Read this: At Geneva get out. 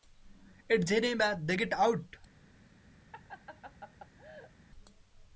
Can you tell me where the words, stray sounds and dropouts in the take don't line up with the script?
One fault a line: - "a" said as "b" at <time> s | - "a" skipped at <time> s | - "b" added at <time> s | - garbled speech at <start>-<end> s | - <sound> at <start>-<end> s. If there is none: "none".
- "they" added at 1.4 s
- laugh at 3.1-4.5 s